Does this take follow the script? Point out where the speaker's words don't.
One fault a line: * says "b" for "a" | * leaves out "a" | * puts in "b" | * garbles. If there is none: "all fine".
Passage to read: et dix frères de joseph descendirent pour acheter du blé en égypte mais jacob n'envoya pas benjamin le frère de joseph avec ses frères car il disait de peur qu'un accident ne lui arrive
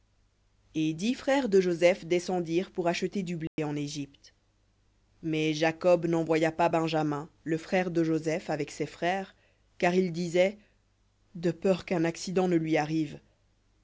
all fine